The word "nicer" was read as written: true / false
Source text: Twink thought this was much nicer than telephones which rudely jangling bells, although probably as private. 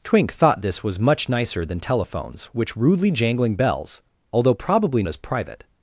true